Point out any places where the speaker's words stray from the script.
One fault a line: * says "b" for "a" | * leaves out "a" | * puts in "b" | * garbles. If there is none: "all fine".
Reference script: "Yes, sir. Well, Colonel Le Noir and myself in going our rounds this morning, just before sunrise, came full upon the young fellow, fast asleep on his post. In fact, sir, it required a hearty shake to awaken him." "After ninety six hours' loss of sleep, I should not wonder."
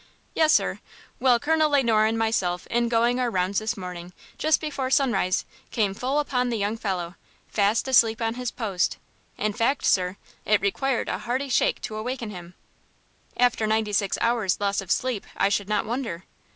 all fine